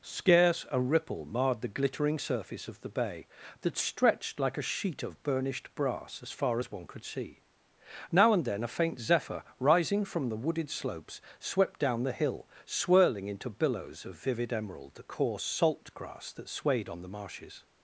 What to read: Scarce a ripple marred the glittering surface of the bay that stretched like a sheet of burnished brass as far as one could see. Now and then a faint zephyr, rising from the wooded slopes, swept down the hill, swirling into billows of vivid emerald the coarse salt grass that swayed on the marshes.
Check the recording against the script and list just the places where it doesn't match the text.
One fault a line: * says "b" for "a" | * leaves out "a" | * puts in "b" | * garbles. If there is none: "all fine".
all fine